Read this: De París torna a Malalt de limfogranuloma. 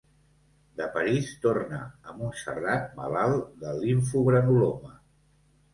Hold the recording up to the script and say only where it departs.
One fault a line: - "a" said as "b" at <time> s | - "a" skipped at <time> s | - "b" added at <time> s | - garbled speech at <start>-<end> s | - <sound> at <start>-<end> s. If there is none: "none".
- "Montserrat" added at 2.2 s